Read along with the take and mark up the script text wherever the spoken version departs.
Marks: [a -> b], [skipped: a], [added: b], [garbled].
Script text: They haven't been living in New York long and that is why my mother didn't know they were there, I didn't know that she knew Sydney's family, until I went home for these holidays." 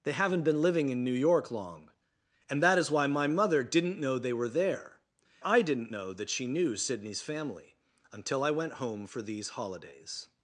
They haven't been living in New York long and that is why my mother didn't know they were there, I didn't know that she knew Sydney's family, until I went home for these holidays."